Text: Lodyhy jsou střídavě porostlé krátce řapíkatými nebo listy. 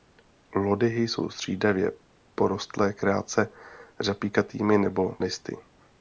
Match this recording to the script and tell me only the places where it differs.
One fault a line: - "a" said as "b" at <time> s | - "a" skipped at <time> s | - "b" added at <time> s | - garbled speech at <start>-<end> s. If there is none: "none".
none